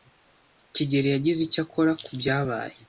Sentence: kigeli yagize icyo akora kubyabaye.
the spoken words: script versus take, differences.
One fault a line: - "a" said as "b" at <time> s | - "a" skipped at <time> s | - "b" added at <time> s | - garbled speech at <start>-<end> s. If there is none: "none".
none